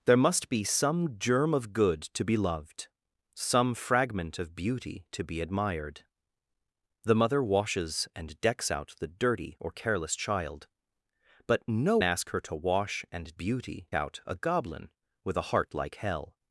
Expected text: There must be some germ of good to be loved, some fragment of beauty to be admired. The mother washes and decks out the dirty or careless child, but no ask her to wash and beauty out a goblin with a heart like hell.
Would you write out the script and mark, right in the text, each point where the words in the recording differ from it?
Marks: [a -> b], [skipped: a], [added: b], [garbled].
There must be some germ of good to be loved, some fragment of beauty to be admired. The mother washes and decks out the dirty or careless child, but no ask her to wash and beauty out a goblin with a heart like hell.